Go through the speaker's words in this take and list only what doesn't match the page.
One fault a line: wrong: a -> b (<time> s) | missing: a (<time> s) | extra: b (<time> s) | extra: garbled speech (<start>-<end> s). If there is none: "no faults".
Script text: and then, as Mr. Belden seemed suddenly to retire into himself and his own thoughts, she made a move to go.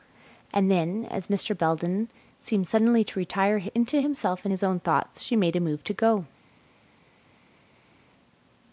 no faults